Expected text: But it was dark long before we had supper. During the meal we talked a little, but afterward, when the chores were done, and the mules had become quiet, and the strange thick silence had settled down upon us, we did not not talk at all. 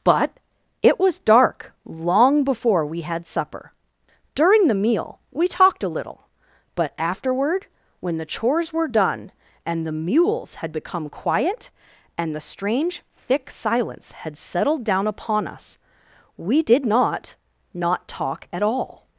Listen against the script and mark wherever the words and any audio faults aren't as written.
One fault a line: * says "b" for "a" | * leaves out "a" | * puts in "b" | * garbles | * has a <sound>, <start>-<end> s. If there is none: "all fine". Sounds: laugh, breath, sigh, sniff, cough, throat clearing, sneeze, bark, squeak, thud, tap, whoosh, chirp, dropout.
all fine